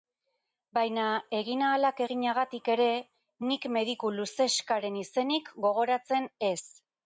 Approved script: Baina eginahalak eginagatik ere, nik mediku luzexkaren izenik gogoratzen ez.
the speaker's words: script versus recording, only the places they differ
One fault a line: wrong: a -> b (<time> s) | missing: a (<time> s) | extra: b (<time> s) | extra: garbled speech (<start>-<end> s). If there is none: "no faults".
no faults